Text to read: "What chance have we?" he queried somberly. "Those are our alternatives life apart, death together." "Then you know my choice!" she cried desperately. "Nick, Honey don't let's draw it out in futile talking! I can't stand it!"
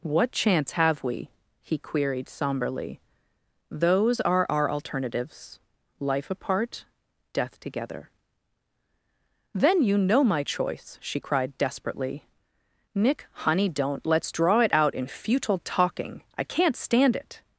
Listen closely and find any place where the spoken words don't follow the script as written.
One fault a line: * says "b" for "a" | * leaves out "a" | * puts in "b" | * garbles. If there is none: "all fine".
all fine